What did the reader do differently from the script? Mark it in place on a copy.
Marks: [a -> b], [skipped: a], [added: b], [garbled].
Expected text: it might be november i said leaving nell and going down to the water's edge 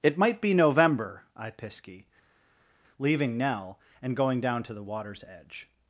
it might be november i [said -> pisky] leaving nell and going down to the water's edge